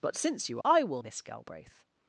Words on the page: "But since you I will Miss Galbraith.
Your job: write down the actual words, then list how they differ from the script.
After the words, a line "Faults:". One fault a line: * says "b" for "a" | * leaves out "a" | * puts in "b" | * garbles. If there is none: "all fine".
"But since you I will Miss Galbraith.
Faults:
all fine